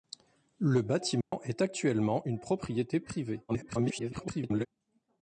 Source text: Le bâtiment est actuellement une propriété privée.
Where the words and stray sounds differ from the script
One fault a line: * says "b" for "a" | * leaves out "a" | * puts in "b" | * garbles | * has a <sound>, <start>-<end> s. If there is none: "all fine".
* has a dropout, 1.2-1.3 s
* garbles